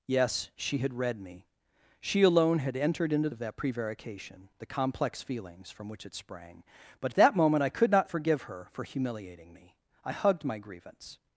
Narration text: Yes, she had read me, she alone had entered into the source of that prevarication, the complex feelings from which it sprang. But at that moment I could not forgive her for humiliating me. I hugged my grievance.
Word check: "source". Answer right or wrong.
wrong